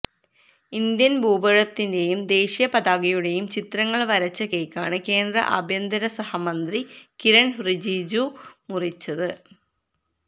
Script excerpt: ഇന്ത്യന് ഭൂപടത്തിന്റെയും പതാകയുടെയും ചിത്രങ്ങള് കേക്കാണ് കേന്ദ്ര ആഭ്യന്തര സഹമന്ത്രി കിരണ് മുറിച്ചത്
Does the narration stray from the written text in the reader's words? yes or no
yes